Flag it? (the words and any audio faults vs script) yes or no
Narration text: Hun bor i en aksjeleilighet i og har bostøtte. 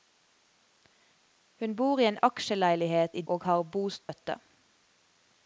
yes